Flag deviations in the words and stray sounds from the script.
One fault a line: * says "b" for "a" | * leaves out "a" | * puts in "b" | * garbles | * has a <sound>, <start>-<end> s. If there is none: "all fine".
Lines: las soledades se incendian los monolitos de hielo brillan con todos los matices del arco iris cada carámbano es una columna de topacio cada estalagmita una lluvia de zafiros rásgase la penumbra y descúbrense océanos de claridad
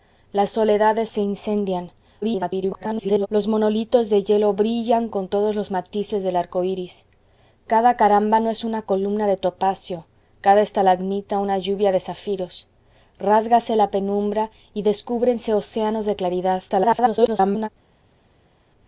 * garbles
* garbles